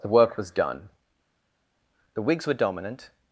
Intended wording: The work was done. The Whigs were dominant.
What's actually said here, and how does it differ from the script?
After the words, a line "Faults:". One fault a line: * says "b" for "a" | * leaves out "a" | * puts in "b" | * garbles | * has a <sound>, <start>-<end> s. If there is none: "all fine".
The work was done. The Whigs were dominant.
Faults:
all fine